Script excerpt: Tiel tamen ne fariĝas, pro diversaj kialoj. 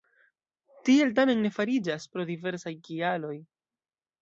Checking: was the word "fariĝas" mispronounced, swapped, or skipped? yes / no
no